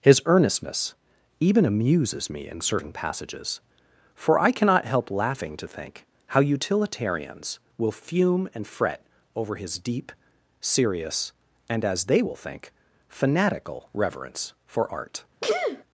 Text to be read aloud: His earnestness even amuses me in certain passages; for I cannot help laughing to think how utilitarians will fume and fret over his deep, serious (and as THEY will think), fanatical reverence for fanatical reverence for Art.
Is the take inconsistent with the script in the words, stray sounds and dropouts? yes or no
yes